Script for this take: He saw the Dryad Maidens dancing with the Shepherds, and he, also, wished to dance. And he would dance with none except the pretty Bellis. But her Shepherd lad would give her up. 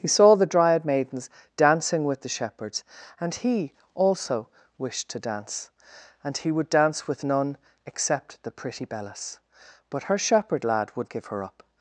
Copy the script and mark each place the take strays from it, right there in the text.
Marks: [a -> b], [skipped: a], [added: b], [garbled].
He saw the Dryad Maidens dancing with the Shepherds, and he, also, wished to dance. And he would dance with none except the pretty Bellis. But her Shepherd lad would give her up.